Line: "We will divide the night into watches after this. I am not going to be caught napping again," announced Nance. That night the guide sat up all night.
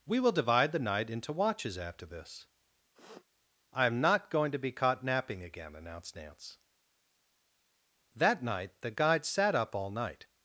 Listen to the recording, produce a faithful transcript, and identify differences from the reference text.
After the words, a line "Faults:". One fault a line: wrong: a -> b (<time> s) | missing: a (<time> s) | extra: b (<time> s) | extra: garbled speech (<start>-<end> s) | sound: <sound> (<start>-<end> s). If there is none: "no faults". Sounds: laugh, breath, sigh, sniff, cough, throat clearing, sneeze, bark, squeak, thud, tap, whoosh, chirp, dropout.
"We will divide the night into watches after this. I am not going to be caught napping again," announced Nance. That night the guide sat up all night.
Faults:
sound: sniff (2.9-3.3 s)